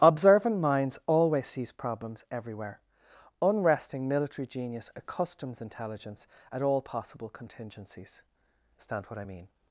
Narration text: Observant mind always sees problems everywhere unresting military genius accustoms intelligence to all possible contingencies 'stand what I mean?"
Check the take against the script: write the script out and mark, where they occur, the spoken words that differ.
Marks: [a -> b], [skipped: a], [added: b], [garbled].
Observant [mind -> minds] always sees problems everywhere unresting military genius accustoms intelligence [to -> at] all possible contingencies 'stand what I mean?"